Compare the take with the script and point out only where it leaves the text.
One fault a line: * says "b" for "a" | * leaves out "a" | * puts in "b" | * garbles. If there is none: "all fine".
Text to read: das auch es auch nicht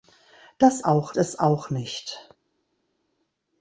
all fine